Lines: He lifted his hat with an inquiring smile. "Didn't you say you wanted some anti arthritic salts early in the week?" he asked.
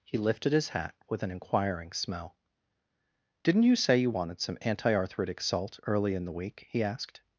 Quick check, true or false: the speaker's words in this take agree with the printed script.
false